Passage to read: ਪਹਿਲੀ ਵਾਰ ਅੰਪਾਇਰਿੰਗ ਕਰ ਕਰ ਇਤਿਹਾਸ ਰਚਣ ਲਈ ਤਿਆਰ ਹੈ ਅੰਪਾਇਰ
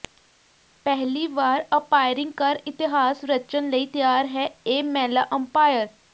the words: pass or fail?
fail